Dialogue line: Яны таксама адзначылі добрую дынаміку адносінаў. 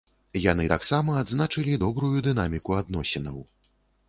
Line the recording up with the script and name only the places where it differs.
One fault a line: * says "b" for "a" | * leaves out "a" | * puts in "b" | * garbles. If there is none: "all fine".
all fine